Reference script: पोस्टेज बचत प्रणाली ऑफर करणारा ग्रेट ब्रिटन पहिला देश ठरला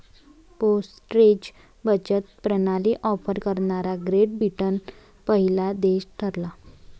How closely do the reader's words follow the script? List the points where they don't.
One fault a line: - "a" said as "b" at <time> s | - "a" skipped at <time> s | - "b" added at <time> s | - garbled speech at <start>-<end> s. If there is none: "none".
none